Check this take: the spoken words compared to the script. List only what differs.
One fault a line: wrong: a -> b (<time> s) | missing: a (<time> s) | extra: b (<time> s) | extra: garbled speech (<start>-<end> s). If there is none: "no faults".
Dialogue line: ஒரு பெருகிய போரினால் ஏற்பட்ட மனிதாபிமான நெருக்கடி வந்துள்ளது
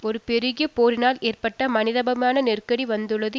no faults